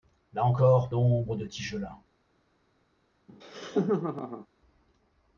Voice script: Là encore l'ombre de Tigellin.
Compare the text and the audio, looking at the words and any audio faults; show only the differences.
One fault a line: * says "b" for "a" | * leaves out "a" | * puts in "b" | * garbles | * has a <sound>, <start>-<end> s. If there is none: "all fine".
* has a laugh, 3.3-4.5 s